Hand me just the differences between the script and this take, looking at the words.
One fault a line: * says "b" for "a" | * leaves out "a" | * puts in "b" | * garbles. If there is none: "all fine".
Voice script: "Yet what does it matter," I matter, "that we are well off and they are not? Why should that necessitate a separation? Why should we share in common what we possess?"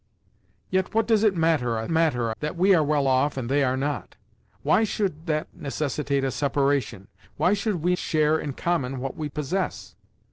all fine